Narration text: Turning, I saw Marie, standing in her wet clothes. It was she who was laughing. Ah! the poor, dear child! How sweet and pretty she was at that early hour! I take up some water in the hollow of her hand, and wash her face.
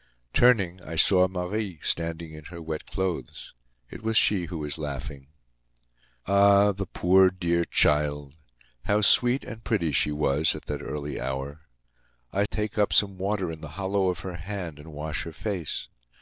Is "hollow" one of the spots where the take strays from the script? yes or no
no